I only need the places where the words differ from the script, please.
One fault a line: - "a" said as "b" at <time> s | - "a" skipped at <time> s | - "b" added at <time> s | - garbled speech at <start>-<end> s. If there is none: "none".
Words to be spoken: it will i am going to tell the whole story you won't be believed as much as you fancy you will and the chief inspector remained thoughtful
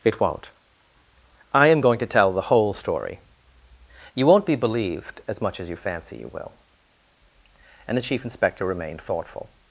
- "will" said as "won't" at 0.2 s